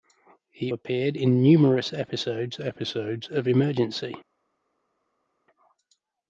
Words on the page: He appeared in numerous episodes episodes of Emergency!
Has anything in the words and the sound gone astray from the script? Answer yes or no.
no